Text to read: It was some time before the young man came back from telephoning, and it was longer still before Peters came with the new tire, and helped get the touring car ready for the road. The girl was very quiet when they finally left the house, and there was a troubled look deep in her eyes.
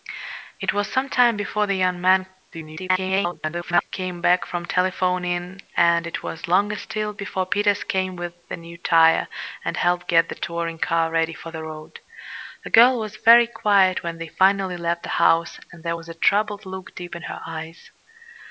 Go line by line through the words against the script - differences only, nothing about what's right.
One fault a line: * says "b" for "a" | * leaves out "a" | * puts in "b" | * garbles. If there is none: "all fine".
* garbles